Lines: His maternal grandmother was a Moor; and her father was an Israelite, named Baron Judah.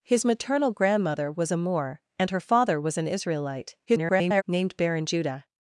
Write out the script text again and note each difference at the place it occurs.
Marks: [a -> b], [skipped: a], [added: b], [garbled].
His maternal grandmother was a Moor; and her father was an Israelite, [garbled] named Baron Judah.